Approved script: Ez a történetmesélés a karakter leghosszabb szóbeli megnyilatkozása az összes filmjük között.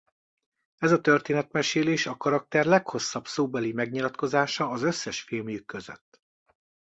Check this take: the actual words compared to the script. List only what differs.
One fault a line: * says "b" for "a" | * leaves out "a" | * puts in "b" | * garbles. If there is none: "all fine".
all fine